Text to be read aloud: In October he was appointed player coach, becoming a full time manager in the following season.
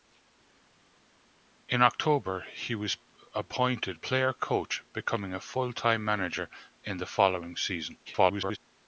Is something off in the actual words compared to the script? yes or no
yes